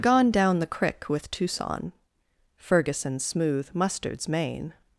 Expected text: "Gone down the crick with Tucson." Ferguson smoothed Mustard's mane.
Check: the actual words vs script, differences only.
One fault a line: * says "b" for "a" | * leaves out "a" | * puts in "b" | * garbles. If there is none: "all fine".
* says "smooth" for "smoothed"